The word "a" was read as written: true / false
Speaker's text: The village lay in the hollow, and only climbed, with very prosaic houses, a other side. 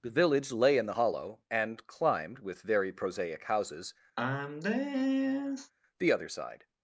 false